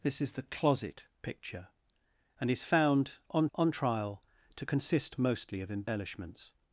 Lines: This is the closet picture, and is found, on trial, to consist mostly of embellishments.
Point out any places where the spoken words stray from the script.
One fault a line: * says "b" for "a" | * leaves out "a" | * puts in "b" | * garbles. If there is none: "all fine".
* puts in "on"